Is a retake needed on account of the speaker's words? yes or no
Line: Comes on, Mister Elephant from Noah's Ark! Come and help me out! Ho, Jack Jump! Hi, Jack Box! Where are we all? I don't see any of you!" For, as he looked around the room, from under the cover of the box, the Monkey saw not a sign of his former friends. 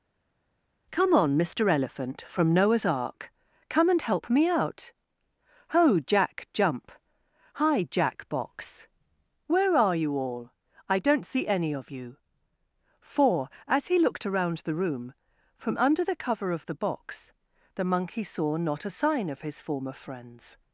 yes